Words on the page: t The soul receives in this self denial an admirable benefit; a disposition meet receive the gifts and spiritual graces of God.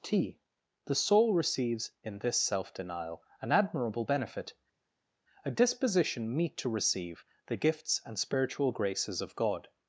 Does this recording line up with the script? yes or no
no